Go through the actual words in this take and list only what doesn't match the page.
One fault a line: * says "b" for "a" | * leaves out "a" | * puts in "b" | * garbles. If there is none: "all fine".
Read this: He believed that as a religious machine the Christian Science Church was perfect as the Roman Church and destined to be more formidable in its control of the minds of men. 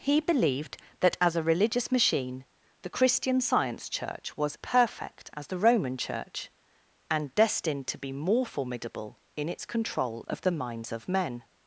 all fine